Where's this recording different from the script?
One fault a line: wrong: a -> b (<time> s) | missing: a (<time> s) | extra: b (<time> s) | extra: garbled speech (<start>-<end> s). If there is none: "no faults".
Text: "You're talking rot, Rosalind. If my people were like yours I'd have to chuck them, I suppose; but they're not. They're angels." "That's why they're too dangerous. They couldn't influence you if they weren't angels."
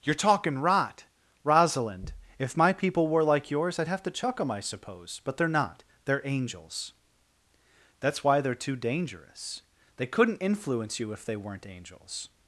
no faults